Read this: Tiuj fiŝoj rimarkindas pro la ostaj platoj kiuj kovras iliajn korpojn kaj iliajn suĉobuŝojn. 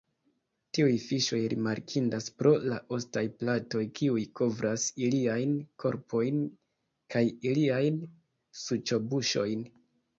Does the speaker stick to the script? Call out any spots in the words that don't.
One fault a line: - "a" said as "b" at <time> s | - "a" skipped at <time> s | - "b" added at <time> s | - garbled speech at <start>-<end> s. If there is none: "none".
none